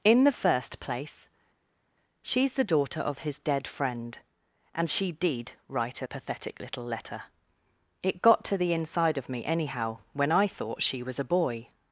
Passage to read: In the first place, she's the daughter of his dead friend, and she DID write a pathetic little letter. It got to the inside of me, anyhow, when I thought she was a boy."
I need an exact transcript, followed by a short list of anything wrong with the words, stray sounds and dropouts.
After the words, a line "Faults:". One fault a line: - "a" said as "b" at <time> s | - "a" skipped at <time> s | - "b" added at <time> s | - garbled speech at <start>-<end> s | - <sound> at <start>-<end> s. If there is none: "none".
In the first place, she's the daughter of his dead friend, and she DID write a pathetic little letter. It got to the inside of me, anyhow, when I thought she was a boy."
Faults:
none